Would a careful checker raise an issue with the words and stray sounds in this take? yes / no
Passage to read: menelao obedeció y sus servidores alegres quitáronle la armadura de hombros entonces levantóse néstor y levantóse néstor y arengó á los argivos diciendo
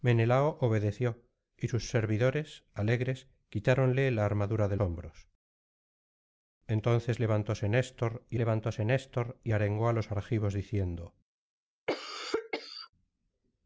yes